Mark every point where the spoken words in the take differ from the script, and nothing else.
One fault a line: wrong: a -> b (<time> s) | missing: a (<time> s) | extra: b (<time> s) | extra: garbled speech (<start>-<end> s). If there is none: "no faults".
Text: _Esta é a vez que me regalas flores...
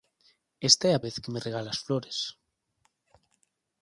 no faults